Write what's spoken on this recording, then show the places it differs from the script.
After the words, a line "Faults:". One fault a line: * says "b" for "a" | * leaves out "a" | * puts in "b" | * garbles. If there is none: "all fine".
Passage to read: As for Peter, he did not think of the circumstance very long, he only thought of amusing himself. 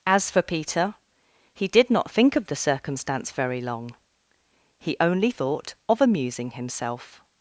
As for Peter, he did not think of the circumstance very long, he only thought of amusing himself.
Faults:
all fine